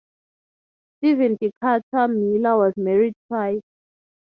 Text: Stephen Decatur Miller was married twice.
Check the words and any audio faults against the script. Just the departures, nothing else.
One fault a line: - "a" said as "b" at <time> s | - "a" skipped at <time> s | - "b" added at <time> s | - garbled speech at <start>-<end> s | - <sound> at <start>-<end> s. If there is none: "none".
none